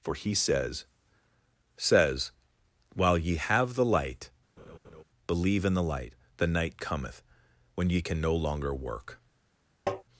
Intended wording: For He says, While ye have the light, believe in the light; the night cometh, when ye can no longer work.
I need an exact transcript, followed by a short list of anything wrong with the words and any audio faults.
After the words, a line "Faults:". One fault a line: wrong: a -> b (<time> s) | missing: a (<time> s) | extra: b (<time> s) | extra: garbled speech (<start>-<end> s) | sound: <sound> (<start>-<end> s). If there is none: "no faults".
For He says says, While ye have the light, believe in the light; the night cometh, when ye can no longer work.
Faults:
extra: says (1.8 s)
sound: laugh (4.6-5.0 s)
sound: tap (9.9-10.0 s)